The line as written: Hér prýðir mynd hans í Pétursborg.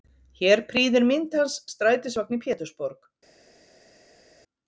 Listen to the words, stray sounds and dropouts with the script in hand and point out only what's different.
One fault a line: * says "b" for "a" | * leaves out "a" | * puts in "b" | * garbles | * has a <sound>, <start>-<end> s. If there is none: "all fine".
* puts in "strætisvagn"